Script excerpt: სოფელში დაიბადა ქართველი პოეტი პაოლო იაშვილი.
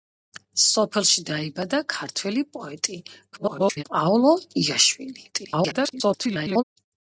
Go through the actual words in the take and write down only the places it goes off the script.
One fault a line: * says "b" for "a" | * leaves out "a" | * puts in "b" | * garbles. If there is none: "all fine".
* garbles
* garbles